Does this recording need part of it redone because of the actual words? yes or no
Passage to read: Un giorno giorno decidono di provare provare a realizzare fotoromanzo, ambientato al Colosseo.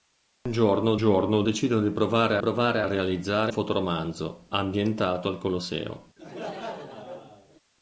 no